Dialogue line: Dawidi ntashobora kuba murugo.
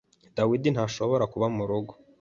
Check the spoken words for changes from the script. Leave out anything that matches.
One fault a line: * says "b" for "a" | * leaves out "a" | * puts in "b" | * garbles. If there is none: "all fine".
all fine